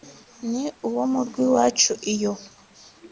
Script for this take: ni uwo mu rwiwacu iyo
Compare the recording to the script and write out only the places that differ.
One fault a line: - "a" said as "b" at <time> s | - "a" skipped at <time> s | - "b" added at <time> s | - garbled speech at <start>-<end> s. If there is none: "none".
none